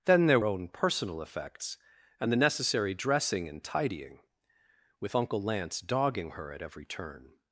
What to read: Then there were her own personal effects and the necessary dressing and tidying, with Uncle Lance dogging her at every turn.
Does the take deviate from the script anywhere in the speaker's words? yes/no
yes